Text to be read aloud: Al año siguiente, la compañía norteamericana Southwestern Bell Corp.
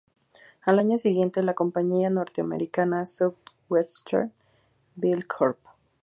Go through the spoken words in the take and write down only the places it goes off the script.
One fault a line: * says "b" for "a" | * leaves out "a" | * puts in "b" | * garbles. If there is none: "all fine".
all fine